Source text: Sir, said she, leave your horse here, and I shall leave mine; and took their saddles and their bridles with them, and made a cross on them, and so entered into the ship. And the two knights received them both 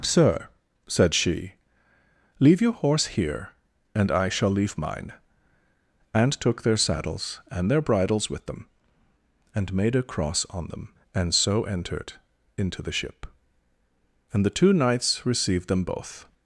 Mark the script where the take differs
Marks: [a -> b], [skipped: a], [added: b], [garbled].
Sir, said she, leave your horse here, and I shall leave mine; and took their saddles and their bridles with them, and made a cross on them, and so entered into the ship. And the two knights received them both